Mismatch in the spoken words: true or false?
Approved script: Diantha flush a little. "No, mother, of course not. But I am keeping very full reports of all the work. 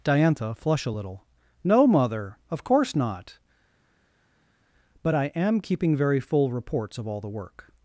false